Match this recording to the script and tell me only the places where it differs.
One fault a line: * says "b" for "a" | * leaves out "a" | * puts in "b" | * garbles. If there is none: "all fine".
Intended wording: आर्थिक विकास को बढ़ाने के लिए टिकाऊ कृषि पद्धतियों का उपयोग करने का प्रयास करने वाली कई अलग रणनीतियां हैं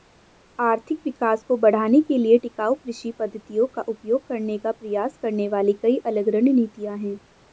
all fine